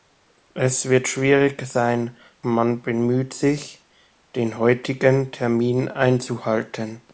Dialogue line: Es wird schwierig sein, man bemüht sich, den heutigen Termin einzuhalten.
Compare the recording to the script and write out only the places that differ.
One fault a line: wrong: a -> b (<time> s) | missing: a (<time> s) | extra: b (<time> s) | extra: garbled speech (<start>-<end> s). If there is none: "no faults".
no faults